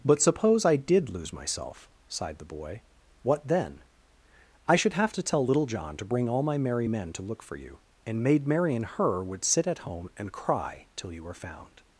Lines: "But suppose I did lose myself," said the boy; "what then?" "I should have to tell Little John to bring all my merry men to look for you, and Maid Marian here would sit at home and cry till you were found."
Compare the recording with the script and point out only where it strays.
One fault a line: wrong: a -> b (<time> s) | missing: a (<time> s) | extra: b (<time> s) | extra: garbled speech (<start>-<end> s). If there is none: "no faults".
wrong: said -> sighed (2.1 s)
wrong: here -> her (8.8 s)